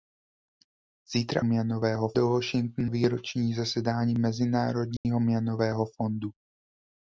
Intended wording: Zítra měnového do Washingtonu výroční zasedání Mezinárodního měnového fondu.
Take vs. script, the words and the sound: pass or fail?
fail